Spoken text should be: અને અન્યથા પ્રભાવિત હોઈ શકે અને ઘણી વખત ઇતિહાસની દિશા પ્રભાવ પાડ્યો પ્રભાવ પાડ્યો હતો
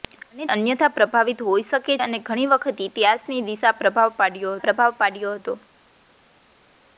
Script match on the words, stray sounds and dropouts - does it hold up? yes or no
yes